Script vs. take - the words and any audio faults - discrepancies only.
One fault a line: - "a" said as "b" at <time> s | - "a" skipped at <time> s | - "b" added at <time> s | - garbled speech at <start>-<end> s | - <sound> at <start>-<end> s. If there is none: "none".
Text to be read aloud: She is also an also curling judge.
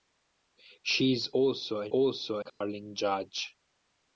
- dropout at 2.5-2.6 s